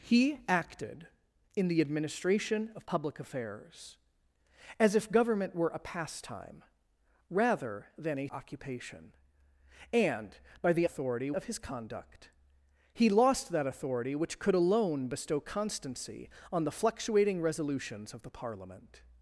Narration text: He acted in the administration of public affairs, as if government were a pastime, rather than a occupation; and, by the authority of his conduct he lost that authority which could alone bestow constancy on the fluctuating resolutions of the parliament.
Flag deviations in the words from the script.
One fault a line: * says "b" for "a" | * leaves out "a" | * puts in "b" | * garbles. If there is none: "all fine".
all fine